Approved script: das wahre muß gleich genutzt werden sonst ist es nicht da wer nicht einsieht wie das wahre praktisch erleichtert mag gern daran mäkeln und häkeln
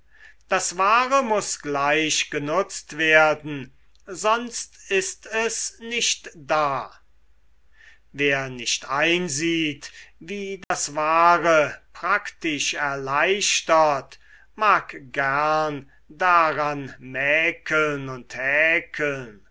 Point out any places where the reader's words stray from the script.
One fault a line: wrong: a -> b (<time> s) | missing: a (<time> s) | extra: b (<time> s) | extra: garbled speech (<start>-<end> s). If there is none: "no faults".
no faults